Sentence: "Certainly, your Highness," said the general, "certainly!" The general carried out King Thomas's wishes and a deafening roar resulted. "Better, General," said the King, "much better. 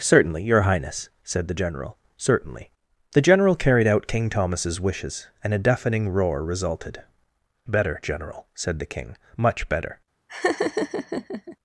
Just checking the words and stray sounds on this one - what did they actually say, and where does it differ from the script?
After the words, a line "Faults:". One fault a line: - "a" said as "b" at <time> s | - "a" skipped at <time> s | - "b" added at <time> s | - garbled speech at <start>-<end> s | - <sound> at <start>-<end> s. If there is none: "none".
"Certainly, your Highness," said the general, "certainly!" The general carried out King Thomas's wishes and a deafening roar resulted. "Better, General," said the King, "much better.
Faults:
- laugh at 10.3-11.6 s